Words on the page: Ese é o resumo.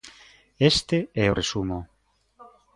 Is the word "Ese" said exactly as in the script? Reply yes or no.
no